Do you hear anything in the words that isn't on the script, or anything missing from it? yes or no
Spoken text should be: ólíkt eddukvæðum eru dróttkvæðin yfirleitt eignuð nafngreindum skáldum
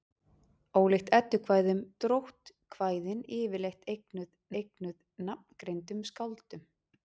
yes